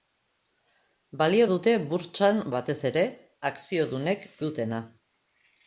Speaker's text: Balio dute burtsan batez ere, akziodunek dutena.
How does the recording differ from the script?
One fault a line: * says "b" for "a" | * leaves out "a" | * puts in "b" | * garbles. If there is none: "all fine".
all fine